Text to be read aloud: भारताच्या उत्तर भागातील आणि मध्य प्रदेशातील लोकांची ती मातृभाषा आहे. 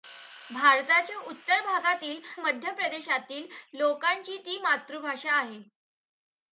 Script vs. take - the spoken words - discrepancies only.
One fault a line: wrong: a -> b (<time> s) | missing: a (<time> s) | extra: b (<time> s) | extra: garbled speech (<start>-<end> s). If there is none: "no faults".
missing: आणि (2.2 s)